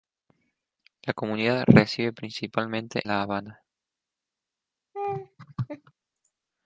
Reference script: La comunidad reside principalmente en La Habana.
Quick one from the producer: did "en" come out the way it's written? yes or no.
no